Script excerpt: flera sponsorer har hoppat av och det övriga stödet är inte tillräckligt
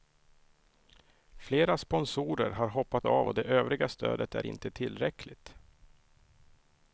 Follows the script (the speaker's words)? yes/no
yes